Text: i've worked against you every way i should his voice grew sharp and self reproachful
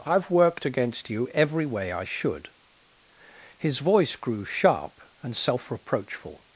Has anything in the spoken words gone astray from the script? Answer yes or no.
no